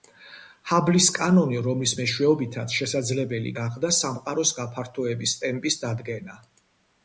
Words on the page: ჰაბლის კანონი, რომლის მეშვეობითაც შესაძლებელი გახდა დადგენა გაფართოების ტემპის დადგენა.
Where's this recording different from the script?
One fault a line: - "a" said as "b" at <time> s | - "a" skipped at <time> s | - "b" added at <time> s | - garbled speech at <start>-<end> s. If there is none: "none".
- "დადგენა" said as "სამყაროს" at 4.0 s